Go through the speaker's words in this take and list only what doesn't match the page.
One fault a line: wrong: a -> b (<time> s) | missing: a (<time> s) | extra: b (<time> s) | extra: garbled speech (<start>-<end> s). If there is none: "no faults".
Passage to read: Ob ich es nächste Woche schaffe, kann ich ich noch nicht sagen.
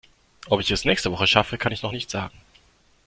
missing: ich (1.8 s)